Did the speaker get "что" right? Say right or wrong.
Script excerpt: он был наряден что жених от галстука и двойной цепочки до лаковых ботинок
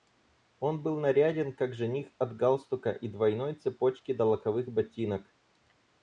wrong